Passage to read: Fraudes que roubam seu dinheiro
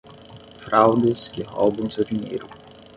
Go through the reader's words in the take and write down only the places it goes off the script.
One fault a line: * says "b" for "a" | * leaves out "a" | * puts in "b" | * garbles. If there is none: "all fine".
all fine